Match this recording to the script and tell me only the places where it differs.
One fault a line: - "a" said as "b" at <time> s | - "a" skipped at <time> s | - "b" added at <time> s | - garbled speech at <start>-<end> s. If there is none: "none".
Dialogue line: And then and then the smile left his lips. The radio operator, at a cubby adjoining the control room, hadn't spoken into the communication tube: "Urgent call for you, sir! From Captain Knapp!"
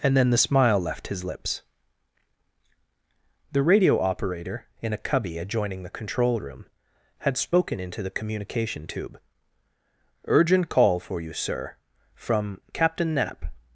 - "and then" skipped at 0.3 s
- "at" said as "in" at 4.8 s
- "hadn't" said as "had" at 7.2 s